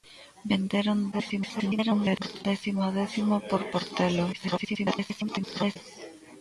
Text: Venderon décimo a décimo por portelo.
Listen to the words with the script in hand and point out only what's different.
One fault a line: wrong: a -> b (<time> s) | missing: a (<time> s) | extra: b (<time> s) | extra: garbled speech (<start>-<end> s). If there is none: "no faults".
extra: garbled speech (1.1-2.5 s)
extra: garbled speech (4.3-5.8 s)